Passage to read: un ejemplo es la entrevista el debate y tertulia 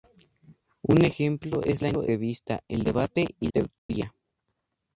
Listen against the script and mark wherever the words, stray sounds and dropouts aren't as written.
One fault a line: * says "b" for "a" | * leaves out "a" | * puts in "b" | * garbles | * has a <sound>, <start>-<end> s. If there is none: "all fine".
* has a dropout, 3.8-3.9 s